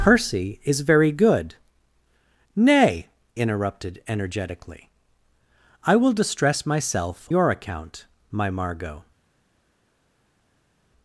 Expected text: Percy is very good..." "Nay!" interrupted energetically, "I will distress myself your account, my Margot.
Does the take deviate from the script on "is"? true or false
false